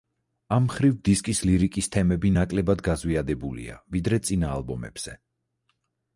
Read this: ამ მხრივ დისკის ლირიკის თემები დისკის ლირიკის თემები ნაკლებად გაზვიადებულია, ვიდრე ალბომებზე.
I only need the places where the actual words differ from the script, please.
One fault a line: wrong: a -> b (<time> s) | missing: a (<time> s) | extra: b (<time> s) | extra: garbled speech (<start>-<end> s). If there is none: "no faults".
missing: დისკის ლირიკის თემები (2.3 s)
extra: წინა (4.3 s)